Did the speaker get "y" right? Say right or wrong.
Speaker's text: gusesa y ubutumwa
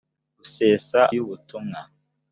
right